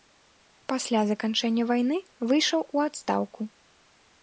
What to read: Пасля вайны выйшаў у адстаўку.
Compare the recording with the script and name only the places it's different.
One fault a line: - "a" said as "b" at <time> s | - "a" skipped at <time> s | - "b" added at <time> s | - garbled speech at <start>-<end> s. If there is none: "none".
- "заканчэння" added at 1.1 s